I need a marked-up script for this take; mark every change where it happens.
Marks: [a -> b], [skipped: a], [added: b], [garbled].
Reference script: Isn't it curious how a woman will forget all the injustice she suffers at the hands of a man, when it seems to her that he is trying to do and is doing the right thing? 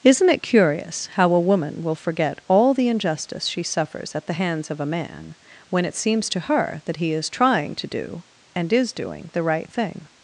Isn't it curious how a woman will forget all the injustice she suffers at the hands of a man, when it seems to her that he is trying to do and is doing the right thing?